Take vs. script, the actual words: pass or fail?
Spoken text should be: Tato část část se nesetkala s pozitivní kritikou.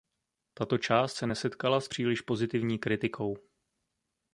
fail